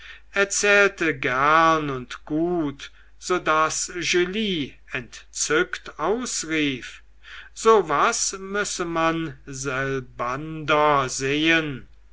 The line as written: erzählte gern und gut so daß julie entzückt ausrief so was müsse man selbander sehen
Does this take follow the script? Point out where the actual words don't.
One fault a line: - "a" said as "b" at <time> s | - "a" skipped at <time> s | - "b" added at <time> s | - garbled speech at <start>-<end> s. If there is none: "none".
none